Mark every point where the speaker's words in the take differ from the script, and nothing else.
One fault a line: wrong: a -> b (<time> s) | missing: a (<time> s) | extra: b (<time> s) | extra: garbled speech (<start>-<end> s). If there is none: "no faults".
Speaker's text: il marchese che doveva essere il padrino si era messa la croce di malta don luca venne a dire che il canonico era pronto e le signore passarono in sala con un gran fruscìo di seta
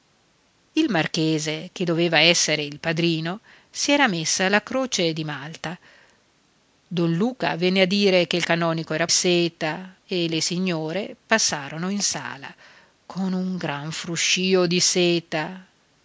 wrong: pronto -> seta (9.1 s)